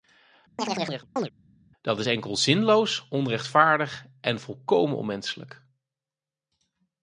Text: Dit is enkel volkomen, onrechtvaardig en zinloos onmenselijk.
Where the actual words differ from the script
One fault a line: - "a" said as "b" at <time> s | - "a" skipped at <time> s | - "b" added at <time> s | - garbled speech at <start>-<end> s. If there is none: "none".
- "Dit" said as "Dat" at 1.8 s
- "volkomen" said as "zinloos" at 2.4 s
- "zinloos" said as "volkomen" at 4.4 s